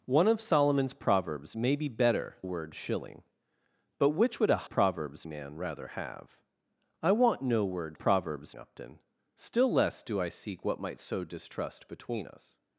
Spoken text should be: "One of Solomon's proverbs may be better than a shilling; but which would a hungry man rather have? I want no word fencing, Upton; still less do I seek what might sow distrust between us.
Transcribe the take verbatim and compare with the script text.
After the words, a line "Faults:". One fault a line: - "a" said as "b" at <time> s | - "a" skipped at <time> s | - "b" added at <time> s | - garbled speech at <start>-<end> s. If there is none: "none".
"One of Solomon's proverbs may be better word a shilling; but which would a proverbs man rather have? I want no word proverbs, Upton; still less do I seek what might sow distrust between us.
Faults:
- "than" said as "word" at 2.4 s
- "hungry" said as "proverbs" at 4.6 s
- "fencing" said as "proverbs" at 7.9 s